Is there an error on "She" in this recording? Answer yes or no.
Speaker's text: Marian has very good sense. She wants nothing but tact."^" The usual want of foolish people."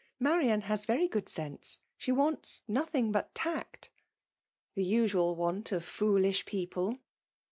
no